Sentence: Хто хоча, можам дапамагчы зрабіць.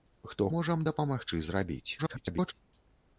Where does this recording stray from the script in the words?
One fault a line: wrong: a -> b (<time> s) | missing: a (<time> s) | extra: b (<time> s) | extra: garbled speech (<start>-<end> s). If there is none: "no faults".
missing: хоча (0.5 s)
extra: garbled speech (2.0-2.5 s)